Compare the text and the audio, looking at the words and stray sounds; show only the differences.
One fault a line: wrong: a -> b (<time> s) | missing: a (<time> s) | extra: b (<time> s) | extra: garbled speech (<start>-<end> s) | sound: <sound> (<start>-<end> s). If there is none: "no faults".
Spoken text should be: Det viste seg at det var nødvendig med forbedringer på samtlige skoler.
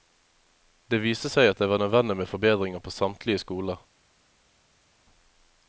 no faults